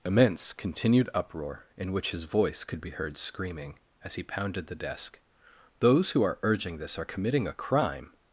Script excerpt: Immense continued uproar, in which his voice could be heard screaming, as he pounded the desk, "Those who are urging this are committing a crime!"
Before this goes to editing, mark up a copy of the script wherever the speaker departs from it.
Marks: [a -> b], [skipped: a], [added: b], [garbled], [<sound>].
Immense continued uproar, in which his voice could be heard screaming, as he pounded the desk, "Those who are urging this are committing a crime!"